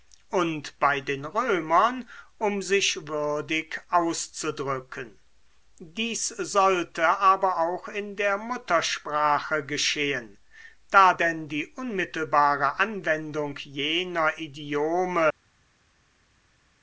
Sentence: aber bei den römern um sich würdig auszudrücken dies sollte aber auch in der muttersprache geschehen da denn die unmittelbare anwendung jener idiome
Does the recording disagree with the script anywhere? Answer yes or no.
yes